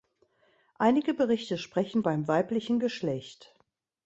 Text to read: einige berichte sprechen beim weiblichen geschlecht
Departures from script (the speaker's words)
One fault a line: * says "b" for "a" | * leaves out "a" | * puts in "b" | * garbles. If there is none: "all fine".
all fine